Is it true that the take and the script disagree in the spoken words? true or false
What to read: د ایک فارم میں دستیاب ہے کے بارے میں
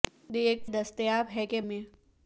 true